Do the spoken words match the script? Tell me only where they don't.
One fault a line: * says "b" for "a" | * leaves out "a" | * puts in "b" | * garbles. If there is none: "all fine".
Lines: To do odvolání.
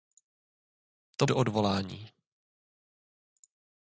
all fine